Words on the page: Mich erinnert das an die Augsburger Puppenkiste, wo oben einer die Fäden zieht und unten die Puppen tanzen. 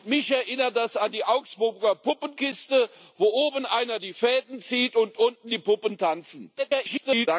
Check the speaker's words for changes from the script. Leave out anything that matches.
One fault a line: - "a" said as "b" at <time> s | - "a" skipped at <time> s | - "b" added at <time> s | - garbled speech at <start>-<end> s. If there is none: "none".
- garbled speech at 6.6-7.3 s